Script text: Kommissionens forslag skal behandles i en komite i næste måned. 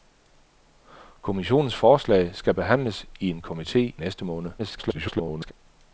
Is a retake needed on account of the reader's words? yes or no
yes